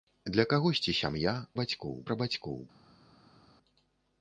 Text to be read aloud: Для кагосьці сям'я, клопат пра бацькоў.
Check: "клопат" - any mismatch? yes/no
yes